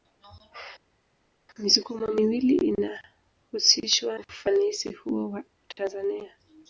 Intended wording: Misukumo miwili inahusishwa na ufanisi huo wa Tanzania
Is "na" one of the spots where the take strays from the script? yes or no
yes